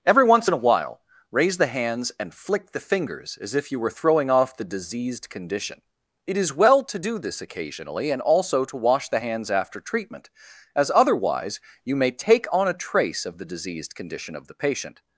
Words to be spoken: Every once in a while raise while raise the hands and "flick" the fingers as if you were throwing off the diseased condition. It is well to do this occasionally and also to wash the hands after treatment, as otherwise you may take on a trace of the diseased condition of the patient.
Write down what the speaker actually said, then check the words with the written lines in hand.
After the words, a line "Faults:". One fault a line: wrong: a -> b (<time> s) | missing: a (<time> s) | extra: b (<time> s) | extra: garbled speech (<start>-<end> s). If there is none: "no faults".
Every once in a while raise the hands and "flick" the fingers as if you were throwing off the diseased condition. It is well to do this occasionally and also to wash the hands after treatment, as otherwise you may take on a trace of the diseased condition of the patient.
Faults:
missing: while raise (1.6 s)